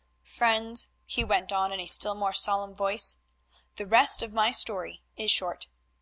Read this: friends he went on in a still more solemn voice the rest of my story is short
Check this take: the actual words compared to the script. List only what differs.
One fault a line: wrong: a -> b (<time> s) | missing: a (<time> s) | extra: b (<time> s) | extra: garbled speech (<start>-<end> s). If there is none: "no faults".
no faults